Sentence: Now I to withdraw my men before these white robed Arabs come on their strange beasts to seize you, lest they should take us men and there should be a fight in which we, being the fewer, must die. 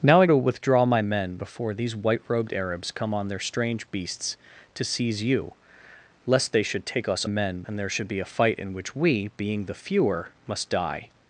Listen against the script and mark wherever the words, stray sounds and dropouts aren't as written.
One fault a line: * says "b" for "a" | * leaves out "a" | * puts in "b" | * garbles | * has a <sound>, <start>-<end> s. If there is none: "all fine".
all fine